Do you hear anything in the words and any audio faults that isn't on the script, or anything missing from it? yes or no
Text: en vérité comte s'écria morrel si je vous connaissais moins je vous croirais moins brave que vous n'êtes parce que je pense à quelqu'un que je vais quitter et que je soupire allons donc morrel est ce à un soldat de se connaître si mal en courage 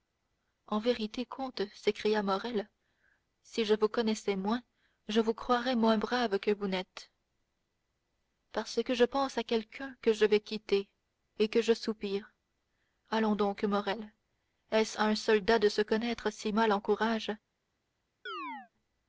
yes